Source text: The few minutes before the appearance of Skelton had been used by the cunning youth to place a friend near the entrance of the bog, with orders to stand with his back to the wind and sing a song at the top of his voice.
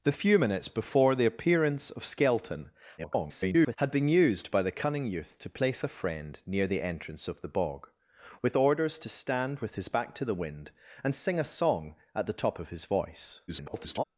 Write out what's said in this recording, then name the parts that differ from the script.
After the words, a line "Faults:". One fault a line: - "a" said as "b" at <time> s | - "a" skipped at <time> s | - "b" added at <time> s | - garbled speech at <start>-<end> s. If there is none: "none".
The few minutes before the appearance of Skelton [garbled] had been used by the cunning youth to place a friend near the entrance of the bog, with orders to stand with his back to the wind and sing a song at the top of his voice. [garbled]
Faults:
- garbled speech at 3.0-3.8 s
- garbled speech at 13.5-14.0 s